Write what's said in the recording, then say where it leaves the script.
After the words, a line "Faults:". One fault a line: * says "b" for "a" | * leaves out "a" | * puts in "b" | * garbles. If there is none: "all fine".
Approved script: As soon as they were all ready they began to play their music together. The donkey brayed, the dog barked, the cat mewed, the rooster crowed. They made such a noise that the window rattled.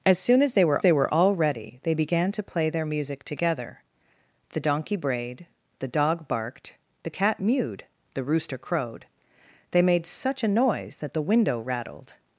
As soon as they were they were all ready they began to play their music together. The donkey brayed, the dog barked, the cat mewed, the rooster crowed. They made such a noise that the window rattled.
Faults:
* puts in "they were"